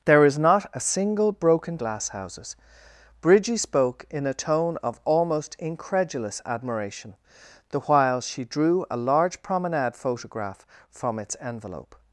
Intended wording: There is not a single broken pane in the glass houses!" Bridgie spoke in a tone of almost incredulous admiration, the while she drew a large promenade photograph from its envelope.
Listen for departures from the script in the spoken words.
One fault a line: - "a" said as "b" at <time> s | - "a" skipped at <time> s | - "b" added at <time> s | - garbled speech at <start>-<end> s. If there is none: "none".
- "pane in the" skipped at 1.8 s